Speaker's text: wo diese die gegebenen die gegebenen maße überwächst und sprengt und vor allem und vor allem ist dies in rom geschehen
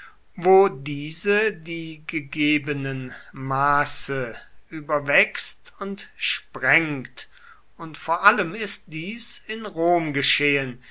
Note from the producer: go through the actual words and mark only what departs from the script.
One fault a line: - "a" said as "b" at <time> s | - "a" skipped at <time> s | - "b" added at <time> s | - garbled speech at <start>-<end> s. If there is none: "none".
- "die gegebenen" skipped at 3.1 s
- "und vor allem" skipped at 8.6 s